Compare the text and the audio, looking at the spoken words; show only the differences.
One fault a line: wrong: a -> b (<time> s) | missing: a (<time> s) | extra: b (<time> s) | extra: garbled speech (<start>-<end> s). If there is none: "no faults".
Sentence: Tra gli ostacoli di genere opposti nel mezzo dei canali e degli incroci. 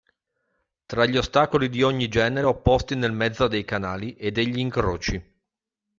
extra: ogni (1.8 s)